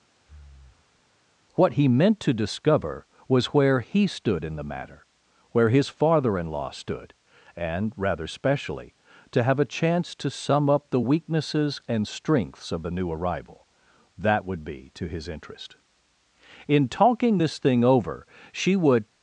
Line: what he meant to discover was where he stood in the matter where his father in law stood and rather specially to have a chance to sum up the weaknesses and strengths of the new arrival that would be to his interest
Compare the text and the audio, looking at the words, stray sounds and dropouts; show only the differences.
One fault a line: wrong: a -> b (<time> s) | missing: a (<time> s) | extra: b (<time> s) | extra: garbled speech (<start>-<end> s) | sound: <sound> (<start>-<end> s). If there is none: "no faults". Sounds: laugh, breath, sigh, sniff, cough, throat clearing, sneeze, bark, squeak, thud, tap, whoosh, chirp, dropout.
sound: breath (0.2-1.1 s)
extra: in talking this thing over she would (16.7 s)